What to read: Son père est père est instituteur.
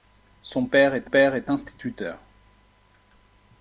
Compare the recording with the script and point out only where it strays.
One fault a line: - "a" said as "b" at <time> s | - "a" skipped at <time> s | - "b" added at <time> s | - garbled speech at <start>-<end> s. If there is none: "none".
none